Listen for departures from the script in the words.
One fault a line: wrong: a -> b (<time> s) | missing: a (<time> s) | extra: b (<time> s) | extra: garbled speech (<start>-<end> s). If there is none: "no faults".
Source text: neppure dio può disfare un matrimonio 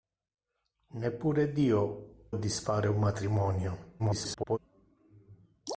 missing: può (2.3 s)
extra: garbled speech (4.0-4.6 s)